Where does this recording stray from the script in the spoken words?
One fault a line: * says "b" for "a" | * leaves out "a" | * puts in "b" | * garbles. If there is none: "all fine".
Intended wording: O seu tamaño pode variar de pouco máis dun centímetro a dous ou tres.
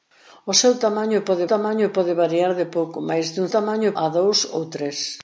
* puts in "tamaño pode"
* says "tamaño" for "centímetro"